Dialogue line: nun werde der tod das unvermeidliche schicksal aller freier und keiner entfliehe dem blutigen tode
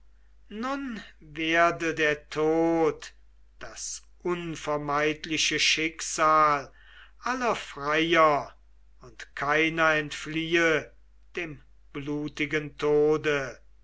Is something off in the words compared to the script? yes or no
no